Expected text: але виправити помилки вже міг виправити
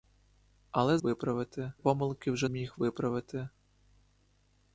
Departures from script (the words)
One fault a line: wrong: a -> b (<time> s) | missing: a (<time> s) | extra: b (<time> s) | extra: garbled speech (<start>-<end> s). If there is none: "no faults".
no faults